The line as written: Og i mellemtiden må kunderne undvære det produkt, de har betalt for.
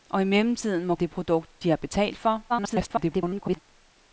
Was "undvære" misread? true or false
true